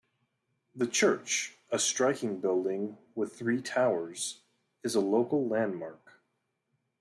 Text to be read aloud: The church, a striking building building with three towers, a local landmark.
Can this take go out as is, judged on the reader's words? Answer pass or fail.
fail